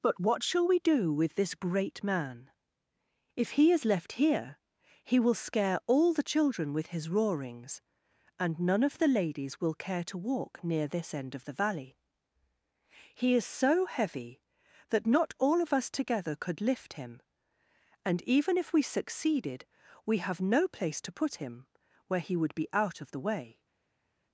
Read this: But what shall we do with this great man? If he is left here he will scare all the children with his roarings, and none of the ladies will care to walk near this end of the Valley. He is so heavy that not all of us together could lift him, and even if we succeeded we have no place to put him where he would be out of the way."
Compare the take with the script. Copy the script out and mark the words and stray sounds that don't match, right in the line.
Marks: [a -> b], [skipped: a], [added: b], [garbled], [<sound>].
But what shall we do with this great man? If he is left here he will scare all the children with his roarings, and none of the ladies will care to walk near this end of the Valley. He is so heavy that not all of us together could lift him, and even if we succeeded we have no place to put him where he would be out of the way."